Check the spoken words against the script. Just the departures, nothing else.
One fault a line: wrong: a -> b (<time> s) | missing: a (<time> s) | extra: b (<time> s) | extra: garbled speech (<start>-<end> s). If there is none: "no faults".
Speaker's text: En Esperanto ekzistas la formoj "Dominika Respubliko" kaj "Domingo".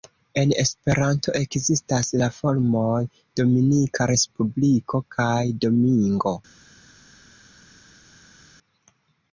no faults